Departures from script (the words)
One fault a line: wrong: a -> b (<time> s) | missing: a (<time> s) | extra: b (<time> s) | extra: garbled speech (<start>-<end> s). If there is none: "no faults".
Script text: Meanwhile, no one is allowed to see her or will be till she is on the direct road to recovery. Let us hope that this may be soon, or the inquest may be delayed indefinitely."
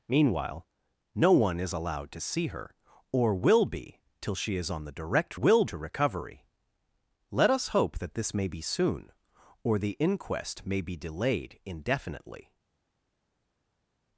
wrong: road -> will (5.3 s)